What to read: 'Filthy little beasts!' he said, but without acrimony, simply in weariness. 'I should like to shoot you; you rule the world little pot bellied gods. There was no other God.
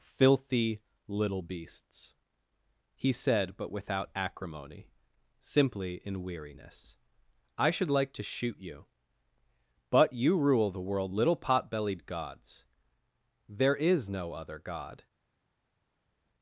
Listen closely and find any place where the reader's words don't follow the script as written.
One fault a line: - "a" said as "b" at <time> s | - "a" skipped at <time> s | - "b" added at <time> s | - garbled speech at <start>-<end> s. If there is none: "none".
- "but" added at 9.9 s
- "was" said as "is" at 13.7 s